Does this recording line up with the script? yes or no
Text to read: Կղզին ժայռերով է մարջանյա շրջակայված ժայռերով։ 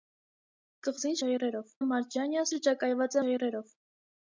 yes